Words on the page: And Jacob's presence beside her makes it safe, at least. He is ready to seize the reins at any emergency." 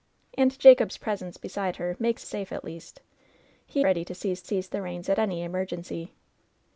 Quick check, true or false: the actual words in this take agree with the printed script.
false